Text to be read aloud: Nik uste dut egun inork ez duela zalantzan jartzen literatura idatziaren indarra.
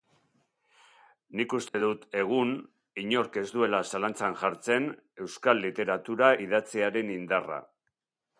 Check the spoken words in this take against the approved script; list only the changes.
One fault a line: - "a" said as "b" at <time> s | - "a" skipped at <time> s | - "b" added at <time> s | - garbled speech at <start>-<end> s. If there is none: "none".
- "euskal" added at 5.3 s